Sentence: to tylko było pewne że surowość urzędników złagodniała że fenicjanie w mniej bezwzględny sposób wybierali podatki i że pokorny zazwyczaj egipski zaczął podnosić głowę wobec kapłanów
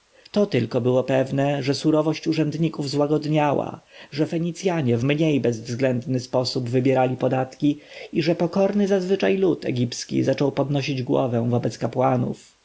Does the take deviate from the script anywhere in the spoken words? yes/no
yes